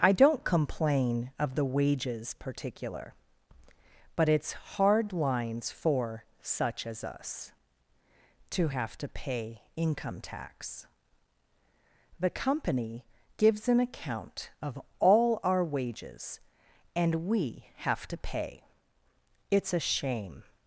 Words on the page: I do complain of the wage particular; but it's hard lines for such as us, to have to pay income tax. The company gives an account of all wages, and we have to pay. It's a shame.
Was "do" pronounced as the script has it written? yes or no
no